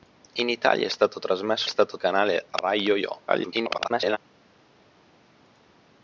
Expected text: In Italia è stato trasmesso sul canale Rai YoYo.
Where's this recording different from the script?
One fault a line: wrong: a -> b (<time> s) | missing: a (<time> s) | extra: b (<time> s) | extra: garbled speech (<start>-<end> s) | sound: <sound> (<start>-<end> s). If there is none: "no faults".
wrong: sul -> stato (1.7 s)
extra: garbled speech (3.3-4.2 s)